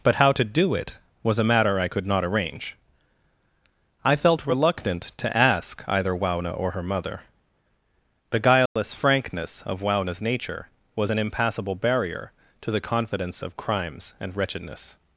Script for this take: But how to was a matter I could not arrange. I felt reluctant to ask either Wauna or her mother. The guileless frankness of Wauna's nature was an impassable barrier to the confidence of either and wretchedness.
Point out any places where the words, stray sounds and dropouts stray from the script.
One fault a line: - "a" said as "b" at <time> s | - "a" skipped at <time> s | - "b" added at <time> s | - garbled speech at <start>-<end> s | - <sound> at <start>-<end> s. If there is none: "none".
- "do it" added at 0.4 s
- dropout at 8.7-8.8 s
- "either" said as "crimes" at 13.6 s